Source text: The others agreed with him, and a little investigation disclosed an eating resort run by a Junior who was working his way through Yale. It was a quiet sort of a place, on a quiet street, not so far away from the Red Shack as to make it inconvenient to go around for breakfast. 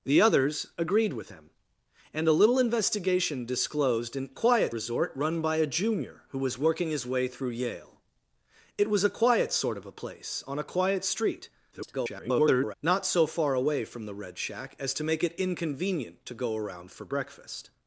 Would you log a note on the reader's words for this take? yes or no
yes